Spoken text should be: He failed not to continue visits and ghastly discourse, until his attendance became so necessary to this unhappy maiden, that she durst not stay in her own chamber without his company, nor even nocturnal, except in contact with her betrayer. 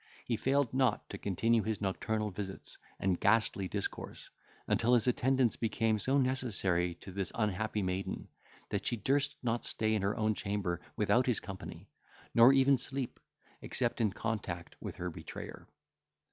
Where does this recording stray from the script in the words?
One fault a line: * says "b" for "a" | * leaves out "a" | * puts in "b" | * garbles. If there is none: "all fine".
* puts in "his nocturnal"
* says "sleep" for "nocturnal"